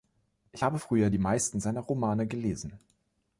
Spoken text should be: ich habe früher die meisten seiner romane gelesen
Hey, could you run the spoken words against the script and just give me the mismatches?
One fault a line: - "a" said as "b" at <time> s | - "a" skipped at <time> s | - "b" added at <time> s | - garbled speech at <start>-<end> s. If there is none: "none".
none